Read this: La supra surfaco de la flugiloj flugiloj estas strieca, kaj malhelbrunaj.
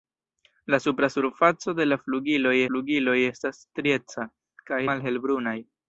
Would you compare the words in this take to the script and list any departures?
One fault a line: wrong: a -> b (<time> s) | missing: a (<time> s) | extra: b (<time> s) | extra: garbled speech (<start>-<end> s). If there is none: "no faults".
no faults